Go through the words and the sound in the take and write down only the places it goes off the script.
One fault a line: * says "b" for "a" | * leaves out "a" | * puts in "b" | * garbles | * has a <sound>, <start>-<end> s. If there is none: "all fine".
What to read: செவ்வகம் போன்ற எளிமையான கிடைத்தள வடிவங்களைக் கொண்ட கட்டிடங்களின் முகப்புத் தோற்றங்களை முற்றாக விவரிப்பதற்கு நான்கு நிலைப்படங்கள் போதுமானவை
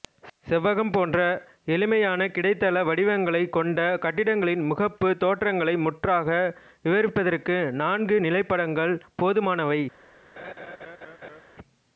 * has a laugh, 10.4-11.4 s